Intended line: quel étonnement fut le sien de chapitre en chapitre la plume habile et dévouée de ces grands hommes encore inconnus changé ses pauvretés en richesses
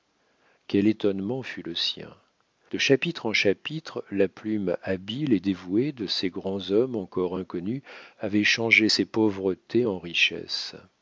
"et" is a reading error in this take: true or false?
false